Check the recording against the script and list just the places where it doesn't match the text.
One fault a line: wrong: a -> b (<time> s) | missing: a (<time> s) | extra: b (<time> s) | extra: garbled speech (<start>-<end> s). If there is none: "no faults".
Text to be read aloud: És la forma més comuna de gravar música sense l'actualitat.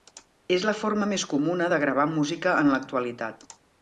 wrong: sense -> en (2.6 s)